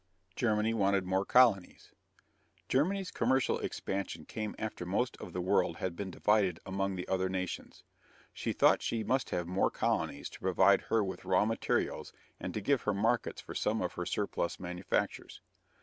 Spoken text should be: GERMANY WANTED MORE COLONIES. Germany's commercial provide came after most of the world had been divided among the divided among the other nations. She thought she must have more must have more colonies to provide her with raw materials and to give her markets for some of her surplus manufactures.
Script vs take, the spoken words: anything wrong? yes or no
yes